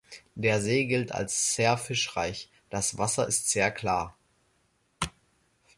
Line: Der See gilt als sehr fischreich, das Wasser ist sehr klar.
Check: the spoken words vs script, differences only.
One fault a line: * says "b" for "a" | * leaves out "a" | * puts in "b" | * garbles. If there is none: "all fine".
all fine